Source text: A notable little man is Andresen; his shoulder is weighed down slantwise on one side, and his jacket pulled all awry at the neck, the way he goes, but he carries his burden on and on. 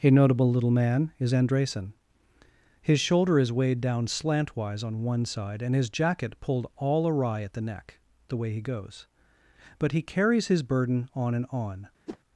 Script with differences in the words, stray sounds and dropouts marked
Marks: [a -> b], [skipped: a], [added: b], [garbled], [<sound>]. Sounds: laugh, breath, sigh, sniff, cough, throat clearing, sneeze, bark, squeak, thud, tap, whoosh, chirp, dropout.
A notable little man is Andresen; his shoulder is weighed down slantwise on one side, and his jacket pulled all awry at the neck, the way he goes, but he carries his burden on and on. [whoosh]